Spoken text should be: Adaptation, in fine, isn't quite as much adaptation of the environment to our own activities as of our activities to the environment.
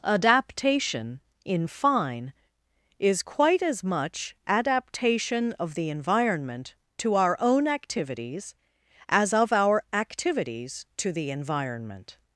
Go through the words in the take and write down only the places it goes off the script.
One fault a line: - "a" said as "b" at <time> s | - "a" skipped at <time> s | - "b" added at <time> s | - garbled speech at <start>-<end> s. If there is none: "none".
- "isn't" said as "is" at 3.0 s